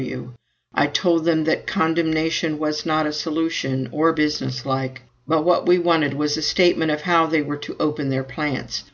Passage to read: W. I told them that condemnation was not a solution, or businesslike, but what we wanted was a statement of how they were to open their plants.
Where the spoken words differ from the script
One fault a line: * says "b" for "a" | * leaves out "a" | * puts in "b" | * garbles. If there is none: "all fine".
all fine